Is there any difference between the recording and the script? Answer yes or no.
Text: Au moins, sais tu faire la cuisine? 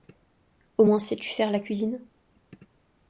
no